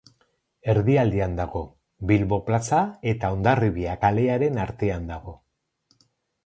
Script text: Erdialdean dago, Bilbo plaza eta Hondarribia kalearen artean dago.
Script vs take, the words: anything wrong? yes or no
no